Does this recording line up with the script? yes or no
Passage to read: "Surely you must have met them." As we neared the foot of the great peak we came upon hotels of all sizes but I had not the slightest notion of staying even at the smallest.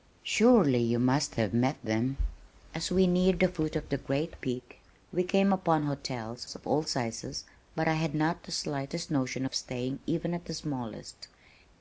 yes